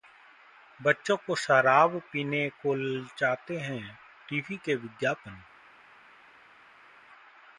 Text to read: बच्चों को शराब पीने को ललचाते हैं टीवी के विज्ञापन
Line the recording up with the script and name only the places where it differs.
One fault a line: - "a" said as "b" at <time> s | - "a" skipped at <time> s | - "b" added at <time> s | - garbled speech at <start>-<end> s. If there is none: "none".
none